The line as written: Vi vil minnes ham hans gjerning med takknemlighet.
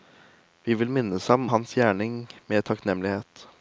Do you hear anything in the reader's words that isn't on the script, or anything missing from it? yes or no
no